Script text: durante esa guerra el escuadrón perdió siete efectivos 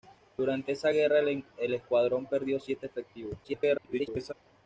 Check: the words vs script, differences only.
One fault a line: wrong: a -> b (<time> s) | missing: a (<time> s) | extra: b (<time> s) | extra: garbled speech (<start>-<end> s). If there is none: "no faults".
extra: garbled speech (3.4-4.3 s)